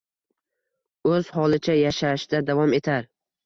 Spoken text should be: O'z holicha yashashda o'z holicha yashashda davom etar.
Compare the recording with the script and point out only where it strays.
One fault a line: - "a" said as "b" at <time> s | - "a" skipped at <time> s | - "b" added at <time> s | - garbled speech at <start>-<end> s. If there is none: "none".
- "o'z holicha yashashda" skipped at 2.4 s